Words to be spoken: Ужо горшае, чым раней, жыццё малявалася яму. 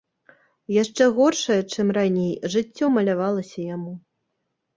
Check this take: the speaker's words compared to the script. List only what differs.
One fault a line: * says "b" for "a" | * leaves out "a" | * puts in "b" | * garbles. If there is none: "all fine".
* says "Яшчэ" for "Ужо"